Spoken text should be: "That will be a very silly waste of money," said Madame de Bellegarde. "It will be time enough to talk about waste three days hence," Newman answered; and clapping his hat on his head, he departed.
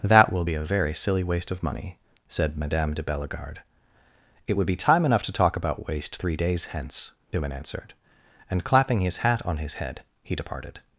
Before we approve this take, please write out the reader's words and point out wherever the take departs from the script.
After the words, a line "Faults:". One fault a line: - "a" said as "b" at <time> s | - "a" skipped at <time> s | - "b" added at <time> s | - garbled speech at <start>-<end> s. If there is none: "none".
"That will be a very silly waste of money," said Madame de Bellegarde. "It would be time enough to talk about waste three days hence," Newman answered; and clapping his hat on his head, he departed.
Faults:
- "will" said as "would" at 4.5 s